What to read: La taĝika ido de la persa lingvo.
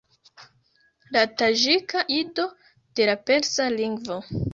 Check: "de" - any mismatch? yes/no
no